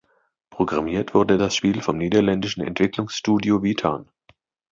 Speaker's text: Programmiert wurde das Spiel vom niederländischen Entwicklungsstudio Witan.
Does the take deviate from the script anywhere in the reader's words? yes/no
no